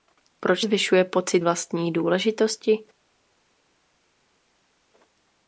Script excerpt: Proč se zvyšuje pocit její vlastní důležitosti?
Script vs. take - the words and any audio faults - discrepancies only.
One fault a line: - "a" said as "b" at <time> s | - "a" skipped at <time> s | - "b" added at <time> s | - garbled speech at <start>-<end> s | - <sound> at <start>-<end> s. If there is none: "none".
- "se" skipped at 0.7 s
- "její" skipped at 1.4 s